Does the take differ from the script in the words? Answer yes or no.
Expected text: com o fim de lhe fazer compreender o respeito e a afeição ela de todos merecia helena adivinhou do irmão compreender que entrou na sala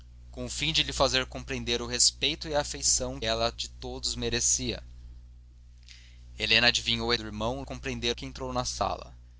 no